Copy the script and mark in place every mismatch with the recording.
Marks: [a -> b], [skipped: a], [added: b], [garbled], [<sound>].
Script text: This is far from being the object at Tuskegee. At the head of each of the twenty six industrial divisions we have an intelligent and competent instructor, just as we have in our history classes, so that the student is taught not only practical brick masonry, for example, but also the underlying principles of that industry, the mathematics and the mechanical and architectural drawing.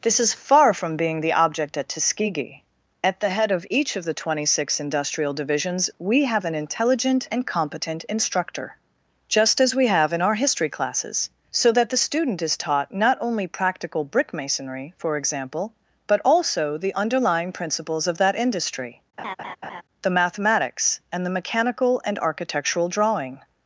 This is far from being the object at Tuskegee. At the head of each of the twenty six industrial divisions we have an intelligent and competent instructor, just as we have in our history classes, so that the student is taught not only practical brick masonry, for example, but also the underlying principles of that industry, [laugh] the mathematics and the mechanical and architectural drawing.